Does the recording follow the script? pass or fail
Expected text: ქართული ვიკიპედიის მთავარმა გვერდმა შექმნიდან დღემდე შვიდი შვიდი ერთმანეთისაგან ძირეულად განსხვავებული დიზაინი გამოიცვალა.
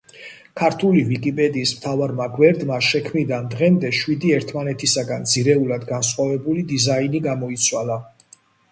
fail